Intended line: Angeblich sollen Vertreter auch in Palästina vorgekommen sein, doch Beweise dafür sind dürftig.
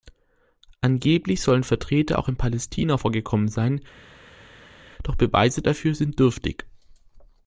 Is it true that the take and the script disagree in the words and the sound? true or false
false